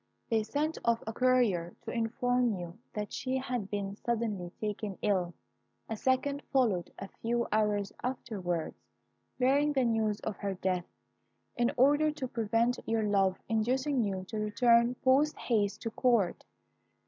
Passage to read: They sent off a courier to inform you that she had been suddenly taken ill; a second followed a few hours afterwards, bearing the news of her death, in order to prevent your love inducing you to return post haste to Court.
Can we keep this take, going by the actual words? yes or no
yes